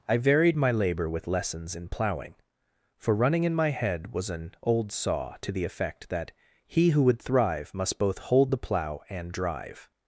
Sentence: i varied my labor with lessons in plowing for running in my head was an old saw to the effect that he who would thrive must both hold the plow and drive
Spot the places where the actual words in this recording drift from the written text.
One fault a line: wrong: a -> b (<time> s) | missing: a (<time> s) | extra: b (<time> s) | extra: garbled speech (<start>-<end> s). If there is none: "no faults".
no faults